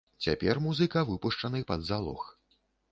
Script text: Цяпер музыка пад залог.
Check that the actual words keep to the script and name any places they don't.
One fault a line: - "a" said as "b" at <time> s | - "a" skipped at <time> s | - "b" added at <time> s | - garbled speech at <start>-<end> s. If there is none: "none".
- "выпушчаны" added at 1.1 s